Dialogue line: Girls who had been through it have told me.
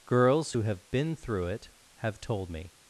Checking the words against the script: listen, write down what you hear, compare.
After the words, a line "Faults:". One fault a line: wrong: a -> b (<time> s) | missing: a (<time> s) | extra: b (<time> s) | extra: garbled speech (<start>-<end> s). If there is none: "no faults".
Girls who have been through it have told me.
Faults:
wrong: had -> have (0.6 s)